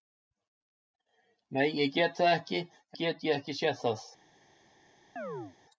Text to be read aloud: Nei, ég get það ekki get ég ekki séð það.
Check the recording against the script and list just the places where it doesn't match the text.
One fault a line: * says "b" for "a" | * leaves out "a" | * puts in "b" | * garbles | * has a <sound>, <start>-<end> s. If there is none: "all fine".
* has a chirp, 5.2-5.6 s